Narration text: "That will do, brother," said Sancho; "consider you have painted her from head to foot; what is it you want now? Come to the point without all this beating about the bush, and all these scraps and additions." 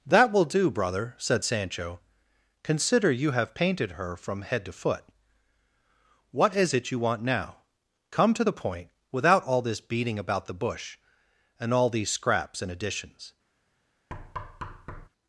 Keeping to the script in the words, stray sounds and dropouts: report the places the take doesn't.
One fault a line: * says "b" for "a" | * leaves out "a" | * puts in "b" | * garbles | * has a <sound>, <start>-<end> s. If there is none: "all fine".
* has a thud, 14.1-15.1 s